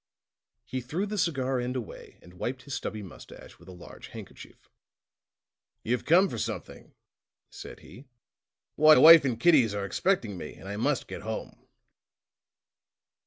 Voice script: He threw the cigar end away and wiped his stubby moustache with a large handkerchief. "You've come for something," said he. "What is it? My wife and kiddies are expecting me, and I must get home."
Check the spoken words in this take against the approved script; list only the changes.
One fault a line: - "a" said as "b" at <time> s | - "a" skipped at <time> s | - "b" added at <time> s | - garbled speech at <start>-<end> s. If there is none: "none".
- "is it My" skipped at 9.0 s